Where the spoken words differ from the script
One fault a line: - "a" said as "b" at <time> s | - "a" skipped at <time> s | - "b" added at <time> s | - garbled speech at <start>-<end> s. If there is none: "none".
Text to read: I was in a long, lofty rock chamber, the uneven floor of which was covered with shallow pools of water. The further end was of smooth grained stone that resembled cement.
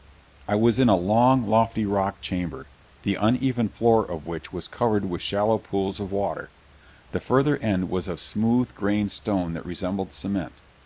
none